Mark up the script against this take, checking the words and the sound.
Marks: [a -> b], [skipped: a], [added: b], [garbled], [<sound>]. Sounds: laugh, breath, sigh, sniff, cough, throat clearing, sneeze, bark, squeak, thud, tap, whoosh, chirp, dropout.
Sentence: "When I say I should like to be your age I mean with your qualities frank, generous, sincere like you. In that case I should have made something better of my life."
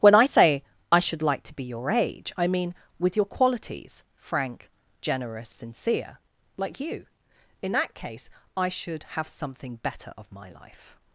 "When I say I should like to be your age I mean with your qualities frank, generous, sincere like you. In that case I should have [skipped: made] something better of my life."